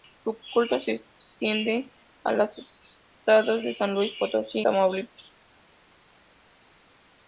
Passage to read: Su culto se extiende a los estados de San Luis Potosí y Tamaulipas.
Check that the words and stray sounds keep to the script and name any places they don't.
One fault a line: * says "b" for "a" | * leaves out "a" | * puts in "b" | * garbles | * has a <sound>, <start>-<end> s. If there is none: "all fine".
* leaves out "y"